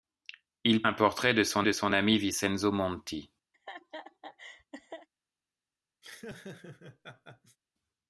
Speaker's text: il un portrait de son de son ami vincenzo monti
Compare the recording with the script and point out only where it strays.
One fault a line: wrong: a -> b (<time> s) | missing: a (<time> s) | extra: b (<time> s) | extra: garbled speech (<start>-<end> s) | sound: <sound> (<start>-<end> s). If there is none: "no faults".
sound: laugh (3.5-5.1 s)
sound: laugh (6.0-7.6 s)